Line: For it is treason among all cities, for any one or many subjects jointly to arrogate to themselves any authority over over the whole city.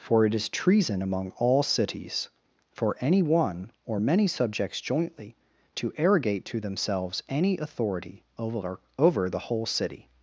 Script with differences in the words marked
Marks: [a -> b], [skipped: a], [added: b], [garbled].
For it is treason among all cities, for any one or many subjects jointly to arrogate to themselves any authority over over the whole city.